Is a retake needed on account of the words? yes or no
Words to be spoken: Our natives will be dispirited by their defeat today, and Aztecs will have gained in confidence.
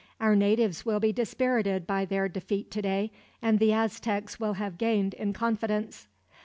yes